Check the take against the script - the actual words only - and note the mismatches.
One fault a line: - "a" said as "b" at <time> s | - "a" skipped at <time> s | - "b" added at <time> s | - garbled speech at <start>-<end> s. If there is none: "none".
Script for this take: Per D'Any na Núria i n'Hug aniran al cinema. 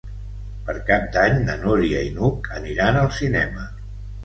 - "Cap" added at 0.9 s